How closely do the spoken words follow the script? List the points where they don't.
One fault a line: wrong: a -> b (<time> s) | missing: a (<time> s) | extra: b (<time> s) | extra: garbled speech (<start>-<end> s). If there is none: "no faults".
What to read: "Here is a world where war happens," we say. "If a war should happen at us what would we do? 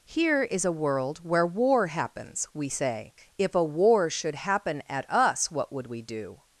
no faults